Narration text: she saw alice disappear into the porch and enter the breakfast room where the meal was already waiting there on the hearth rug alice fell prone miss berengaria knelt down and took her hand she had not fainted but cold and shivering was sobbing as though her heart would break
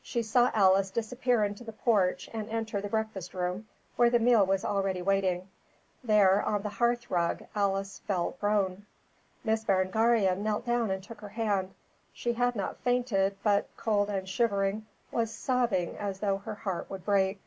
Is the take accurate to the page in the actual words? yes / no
yes